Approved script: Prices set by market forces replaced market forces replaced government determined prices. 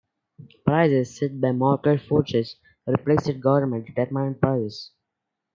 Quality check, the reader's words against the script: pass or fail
fail